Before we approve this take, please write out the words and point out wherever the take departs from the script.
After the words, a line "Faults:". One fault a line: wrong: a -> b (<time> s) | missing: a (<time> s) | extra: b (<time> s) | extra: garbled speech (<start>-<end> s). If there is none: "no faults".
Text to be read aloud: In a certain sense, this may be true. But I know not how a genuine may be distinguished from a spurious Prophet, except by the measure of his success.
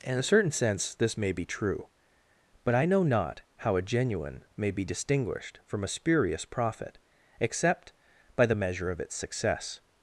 In a certain sense, this may be true. But I know not how a genuine may be distinguished from a spurious Prophet, except by the measure of its success.
Faults:
wrong: his -> its (9.0 s)